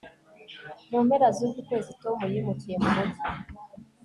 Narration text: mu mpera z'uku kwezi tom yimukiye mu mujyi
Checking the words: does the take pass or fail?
pass